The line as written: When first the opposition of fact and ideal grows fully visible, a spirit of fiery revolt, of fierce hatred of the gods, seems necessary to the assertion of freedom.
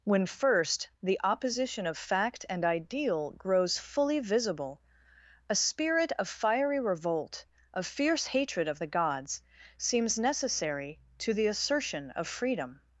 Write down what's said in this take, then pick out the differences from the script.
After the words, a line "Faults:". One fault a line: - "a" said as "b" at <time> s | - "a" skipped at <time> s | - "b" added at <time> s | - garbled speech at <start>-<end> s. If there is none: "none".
When first the opposition of fact and ideal grows fully visible, a spirit of fiery revolt, of fierce hatred of the gods, seems necessary to the assertion of freedom.
Faults:
none